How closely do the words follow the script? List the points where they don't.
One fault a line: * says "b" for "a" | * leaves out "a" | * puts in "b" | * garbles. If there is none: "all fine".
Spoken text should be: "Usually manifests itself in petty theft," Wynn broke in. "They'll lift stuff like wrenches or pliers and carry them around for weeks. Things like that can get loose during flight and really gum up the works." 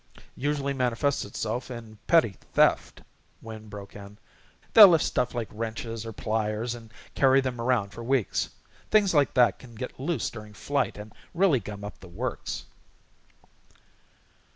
all fine